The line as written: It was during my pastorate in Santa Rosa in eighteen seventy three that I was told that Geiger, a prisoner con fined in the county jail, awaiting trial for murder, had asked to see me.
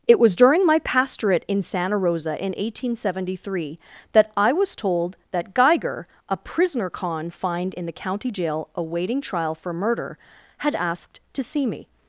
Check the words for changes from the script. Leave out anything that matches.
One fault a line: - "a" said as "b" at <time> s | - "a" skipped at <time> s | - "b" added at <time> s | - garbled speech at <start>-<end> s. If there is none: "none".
none